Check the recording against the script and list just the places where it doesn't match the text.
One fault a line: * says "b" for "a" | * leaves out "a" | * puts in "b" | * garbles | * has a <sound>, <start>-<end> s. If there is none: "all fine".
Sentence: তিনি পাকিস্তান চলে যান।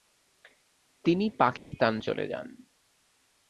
* has a dropout, 1.6-1.7 s